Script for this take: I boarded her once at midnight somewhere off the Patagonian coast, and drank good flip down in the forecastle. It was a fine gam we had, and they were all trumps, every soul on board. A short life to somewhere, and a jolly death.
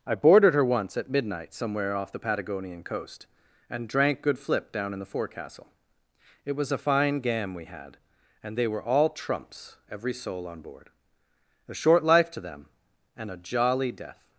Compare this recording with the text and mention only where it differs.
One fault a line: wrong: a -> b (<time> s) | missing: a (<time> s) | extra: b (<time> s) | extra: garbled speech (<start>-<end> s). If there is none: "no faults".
wrong: somewhere -> them (12.4 s)